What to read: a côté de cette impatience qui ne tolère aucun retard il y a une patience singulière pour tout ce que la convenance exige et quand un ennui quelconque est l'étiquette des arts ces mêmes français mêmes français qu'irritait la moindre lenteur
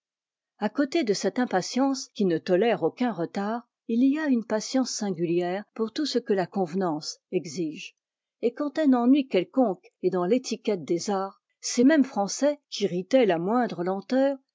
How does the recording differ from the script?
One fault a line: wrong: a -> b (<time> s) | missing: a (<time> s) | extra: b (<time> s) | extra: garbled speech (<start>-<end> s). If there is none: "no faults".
extra: dans (10.1 s)
missing: mêmes français (12.6 s)